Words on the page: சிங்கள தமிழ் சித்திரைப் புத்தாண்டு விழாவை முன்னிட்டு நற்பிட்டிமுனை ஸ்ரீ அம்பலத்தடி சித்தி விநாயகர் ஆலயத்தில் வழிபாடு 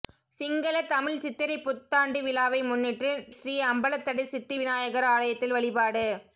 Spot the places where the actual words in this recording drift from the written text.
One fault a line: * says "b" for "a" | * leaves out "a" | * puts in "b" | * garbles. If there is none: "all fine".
* leaves out "நற்பிட்டிமுனை"